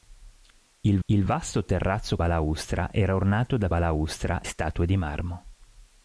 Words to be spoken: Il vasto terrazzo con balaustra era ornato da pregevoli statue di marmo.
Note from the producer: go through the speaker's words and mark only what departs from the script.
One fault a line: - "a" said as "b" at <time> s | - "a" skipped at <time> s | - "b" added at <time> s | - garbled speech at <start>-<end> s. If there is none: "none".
- "il" added at 1.0 s
- "con" skipped at 2.2 s
- "pregevoli" said as "balaustra" at 3.7 s